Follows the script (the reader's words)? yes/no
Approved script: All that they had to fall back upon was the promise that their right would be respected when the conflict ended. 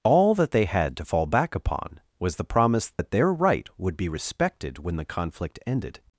yes